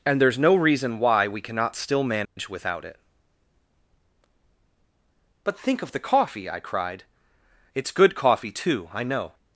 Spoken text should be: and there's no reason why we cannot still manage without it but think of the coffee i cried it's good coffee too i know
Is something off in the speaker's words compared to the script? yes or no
no